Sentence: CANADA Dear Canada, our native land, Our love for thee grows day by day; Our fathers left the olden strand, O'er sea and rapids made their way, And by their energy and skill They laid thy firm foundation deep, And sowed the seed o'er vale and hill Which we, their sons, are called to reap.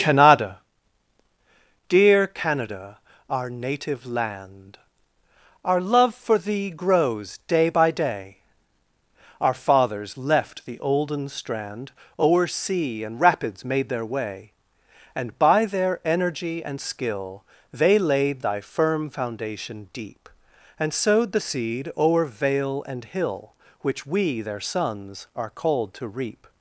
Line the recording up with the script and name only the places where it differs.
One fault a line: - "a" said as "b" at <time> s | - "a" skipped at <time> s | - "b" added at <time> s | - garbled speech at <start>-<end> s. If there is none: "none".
none